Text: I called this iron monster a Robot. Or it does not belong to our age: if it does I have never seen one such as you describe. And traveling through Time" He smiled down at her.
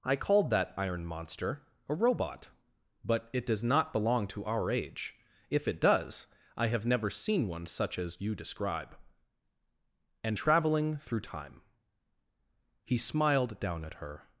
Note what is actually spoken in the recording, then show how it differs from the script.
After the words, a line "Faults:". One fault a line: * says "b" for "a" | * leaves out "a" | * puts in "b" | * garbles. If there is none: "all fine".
I called that iron monster a Robot. But it does not belong to our age: if it does I have never seen one such as you describe. And traveling through Time" He smiled down at her.
Faults:
* says "that" for "this"
* says "But" for "Or"